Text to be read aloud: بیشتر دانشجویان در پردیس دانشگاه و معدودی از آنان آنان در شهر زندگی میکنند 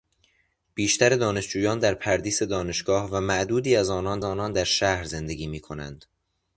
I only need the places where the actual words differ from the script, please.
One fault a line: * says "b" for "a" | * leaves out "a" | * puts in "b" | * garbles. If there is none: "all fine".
all fine